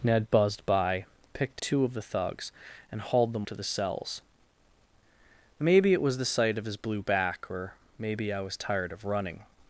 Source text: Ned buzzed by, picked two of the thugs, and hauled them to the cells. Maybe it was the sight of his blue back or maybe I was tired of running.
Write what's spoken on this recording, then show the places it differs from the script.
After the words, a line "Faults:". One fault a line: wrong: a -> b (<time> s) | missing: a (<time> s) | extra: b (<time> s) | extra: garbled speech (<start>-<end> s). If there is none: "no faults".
Ned buzzed by, picked two of the thugs, and hauled them to the cells. Maybe it was the sight of his blue back or maybe I was tired of running.
Faults:
no faults